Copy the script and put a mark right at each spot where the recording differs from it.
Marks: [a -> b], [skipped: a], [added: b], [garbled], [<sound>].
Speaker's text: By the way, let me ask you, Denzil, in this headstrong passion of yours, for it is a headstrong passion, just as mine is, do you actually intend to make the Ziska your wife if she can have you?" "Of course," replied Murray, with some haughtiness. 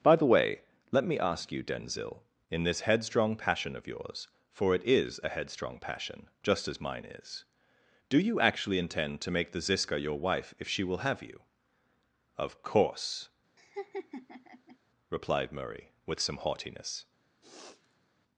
By the way, let me ask you, Denzil, in this headstrong passion of yours, for it is a headstrong passion, just as mine is, do you actually intend to make the Ziska your wife if she [can -> will] have you?" "Of course," [laugh] replied Murray, with some haughtiness. [sniff]